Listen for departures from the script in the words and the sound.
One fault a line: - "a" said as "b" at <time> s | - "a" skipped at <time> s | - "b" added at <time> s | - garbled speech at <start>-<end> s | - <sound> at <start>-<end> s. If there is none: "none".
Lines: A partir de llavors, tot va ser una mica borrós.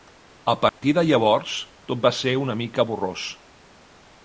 - dropout at 0.7-0.8 s